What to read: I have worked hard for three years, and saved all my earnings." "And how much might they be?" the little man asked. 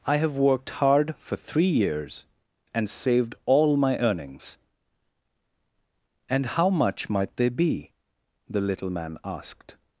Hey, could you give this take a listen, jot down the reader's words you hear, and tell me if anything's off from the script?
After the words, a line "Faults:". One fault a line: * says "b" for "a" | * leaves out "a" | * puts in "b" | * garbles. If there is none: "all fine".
I have worked hard for three years, and saved all my earnings." "And how much might they be?" the little man asked.
Faults:
all fine